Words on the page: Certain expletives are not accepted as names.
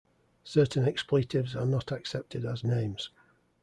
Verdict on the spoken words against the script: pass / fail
pass